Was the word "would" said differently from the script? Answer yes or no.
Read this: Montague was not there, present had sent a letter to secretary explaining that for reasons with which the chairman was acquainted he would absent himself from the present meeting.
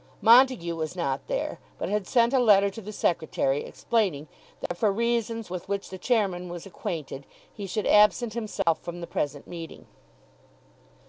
yes